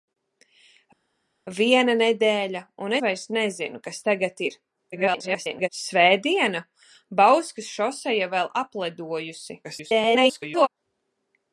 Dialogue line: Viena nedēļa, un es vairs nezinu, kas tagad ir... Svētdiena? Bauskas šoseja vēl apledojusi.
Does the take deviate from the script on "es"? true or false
true